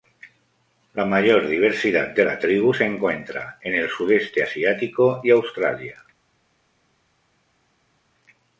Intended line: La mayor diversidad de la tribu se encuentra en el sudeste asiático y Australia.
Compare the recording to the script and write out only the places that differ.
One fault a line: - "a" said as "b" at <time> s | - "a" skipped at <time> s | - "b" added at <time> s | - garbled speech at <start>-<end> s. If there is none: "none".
none